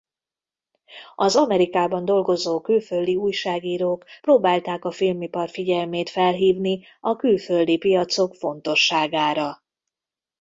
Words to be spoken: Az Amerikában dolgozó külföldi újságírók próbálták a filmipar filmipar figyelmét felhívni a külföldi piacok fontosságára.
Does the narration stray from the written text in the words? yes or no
yes